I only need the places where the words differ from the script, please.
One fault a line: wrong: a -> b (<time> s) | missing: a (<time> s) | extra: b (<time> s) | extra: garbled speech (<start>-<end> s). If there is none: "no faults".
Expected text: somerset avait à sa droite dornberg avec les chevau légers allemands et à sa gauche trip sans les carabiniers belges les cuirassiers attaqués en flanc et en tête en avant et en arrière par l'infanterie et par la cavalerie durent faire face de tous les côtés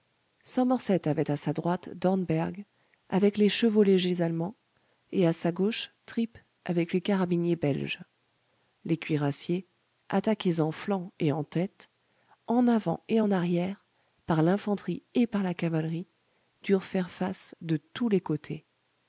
wrong: sans -> avec (6.7 s)